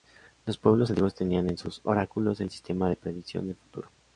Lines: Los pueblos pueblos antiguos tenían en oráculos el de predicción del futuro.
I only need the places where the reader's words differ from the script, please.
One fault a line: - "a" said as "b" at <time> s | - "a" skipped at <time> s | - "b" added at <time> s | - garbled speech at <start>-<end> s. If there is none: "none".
- "pueblos" skipped at 0.9 s
- "sus" added at 1.6 s
- "sistema" added at 2.5 s